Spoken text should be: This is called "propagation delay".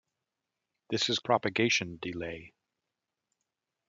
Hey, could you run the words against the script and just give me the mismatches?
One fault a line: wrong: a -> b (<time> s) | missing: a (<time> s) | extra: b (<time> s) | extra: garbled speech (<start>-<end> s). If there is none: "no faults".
missing: called (1.2 s)